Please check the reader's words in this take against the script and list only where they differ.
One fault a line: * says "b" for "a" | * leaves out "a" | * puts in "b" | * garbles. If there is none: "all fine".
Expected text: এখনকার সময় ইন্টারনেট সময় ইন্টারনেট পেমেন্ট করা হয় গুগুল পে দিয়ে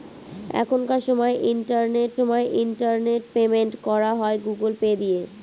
all fine